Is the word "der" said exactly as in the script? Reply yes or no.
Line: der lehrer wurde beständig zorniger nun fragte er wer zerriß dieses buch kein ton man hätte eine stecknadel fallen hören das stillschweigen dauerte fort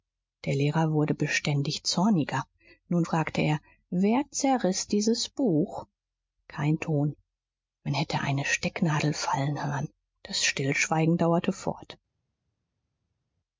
yes